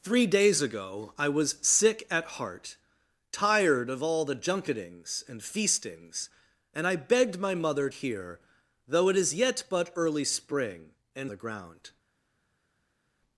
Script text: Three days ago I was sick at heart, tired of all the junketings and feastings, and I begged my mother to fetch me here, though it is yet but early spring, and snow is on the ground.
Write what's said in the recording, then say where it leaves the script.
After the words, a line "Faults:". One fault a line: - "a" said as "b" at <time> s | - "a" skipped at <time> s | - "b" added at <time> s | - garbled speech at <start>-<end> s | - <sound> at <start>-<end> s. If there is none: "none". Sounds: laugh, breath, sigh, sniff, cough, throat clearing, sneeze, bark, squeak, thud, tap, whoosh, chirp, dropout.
Three days ago I was sick at heart, tired of all the junketings and feastings, and I begged my mother here, though it is yet but early spring, and the ground.
Faults:
- "to fetch me" skipped at 7.9 s
- "snow is on" skipped at 11.3 s